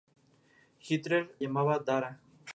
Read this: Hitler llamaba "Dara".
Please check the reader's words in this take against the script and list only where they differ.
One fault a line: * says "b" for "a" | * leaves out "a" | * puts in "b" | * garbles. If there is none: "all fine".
all fine